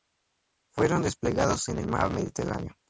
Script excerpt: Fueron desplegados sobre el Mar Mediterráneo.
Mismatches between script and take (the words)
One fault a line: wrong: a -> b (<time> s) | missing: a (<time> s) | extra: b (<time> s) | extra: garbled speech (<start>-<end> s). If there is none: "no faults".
wrong: sobre -> en (1.7 s)